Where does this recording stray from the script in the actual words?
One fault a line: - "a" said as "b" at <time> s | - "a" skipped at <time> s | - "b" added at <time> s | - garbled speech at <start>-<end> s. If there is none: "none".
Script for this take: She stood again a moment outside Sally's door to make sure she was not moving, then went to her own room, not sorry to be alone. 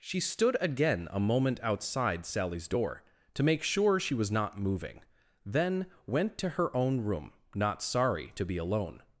none